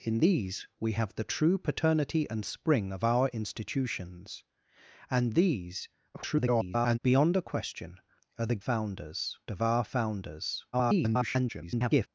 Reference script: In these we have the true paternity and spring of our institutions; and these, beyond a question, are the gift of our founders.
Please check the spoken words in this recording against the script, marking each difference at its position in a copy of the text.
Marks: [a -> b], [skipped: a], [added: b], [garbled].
In these we have the true paternity and spring of our institutions; and these, [garbled] beyond a question, are the [gift -> founders] of our founders. [garbled]